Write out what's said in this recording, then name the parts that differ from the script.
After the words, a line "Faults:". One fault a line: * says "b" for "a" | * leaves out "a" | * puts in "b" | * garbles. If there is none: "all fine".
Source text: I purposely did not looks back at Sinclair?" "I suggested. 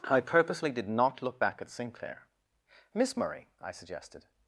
I purposely did not look back at Sinclair. "Miss Murray?" I suggested.
Faults:
* says "look" for "looks"
* puts in "Miss Murray"